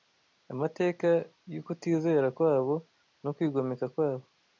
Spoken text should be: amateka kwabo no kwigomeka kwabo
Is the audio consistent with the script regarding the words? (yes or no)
no